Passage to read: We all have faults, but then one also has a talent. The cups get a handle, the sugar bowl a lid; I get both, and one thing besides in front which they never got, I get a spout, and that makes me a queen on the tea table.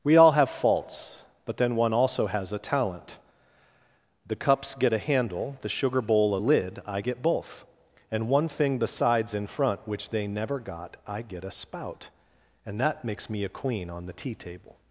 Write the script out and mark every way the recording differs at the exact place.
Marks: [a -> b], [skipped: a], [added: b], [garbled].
We all have faults, but then one also has a talent. The cups get a handle, the sugar bowl a lid; I get both, and one thing besides in front which they never got, I get a spout, and that makes me a queen on the tea table.